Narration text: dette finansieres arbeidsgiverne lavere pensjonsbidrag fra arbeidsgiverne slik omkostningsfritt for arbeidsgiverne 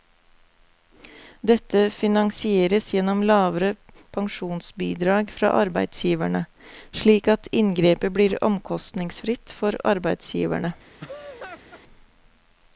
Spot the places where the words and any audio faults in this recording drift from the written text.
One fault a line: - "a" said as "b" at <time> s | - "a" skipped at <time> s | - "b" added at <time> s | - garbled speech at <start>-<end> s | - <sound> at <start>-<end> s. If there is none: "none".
- "arbeidsgiverne" said as "gjennom" at 2.9 s
- "at inngrepet blir" added at 7.3 s
- laugh at 11.0-11.8 s